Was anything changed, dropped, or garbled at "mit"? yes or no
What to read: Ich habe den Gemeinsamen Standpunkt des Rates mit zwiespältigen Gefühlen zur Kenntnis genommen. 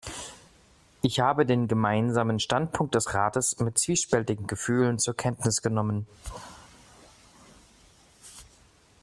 no